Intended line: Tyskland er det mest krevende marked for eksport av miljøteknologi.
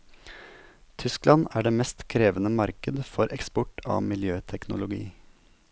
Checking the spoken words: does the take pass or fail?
pass